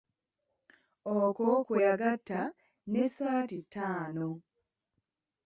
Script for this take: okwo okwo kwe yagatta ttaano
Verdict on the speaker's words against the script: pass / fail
fail